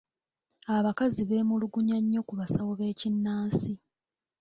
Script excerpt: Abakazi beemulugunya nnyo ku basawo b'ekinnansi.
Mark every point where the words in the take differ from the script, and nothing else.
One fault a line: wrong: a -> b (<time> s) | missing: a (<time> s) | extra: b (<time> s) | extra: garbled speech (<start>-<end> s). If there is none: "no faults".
no faults